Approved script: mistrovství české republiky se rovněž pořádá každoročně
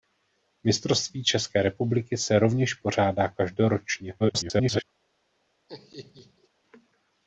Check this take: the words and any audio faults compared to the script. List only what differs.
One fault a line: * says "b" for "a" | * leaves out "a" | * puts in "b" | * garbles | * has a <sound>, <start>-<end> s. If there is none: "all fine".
* garbles
* has a laugh, 5.7-6.5 s